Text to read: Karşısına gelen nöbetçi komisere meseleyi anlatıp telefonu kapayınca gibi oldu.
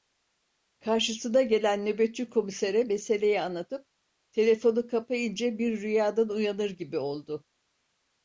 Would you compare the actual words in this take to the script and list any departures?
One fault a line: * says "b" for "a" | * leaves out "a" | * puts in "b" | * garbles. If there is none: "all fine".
* puts in "bir rüyadan uyanır"